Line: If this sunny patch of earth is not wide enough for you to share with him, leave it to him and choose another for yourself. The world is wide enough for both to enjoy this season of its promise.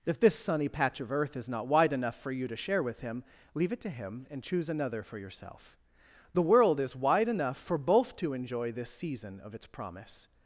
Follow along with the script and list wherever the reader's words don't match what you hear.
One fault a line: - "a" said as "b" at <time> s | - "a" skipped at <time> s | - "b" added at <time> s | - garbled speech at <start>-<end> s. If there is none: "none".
none